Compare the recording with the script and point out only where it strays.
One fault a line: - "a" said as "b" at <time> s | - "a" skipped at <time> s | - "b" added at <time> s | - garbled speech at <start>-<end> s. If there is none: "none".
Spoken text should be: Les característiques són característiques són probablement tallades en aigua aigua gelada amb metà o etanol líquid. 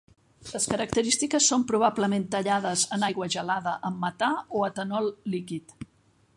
- "característiques són" skipped at 1.6 s
- "aigua" skipped at 3.3 s